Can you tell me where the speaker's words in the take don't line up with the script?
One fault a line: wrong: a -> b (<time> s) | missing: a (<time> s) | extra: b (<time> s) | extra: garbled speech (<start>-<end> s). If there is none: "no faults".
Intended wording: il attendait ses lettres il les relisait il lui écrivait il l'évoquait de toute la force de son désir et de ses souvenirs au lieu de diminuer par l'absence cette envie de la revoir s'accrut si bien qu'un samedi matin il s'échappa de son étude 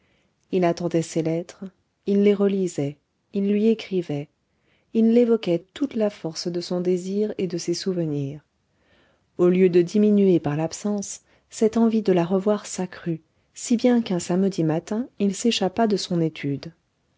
missing: de (5.6 s)